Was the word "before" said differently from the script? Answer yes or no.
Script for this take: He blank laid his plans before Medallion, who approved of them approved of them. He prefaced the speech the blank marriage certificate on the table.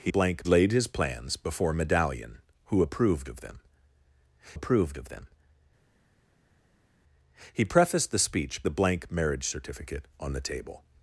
no